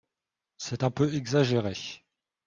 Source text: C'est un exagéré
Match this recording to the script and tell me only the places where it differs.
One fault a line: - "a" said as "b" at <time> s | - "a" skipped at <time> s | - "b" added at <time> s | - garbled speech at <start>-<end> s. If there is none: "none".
- "peu" added at 0.9 s